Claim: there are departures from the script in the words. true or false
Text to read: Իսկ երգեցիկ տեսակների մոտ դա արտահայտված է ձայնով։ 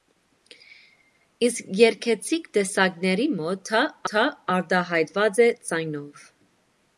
true